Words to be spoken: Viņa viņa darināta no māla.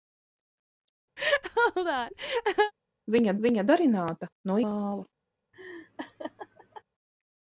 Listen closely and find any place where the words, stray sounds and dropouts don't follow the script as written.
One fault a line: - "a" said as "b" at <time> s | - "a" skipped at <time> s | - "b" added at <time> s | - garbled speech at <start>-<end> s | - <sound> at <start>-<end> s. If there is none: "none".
- laugh at 1.2-2.7 s
- laugh at 5.5-6.8 s